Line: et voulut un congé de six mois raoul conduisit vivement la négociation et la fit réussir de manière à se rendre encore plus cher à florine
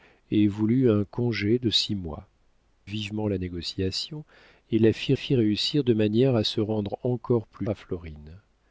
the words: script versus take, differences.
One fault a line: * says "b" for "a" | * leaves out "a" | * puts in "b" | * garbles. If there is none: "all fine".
* leaves out "raoul conduisit"
* puts in "fit"
* leaves out "cher"